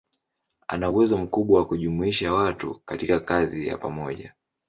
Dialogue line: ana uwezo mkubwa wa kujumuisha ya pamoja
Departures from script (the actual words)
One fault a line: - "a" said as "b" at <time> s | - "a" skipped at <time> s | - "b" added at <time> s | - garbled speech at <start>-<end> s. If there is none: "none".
- "watu katika kazi" added at 2.3 s